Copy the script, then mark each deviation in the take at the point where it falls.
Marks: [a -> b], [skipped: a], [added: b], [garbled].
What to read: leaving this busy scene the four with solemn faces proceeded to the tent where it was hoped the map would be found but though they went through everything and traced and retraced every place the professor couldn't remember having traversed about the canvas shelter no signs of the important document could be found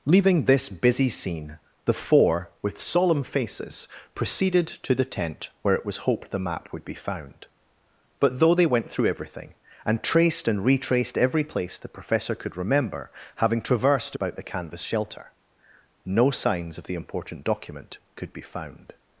leaving this busy scene the four with solemn faces proceeded to the tent where it was hoped the map would be found but though they went through everything and traced and retraced every place the professor [couldn't -> could] remember having traversed about the canvas shelter no signs of the important document could be found